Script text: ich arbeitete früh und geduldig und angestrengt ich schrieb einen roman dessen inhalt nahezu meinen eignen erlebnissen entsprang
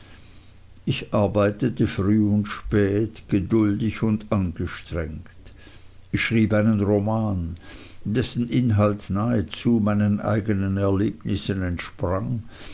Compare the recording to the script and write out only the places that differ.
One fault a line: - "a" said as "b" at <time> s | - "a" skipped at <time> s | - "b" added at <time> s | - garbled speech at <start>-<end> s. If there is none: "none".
- "spät" added at 2.5 s